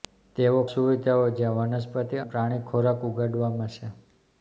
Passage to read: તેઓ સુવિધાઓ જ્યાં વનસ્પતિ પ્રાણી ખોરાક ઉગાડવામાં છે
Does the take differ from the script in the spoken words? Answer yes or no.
no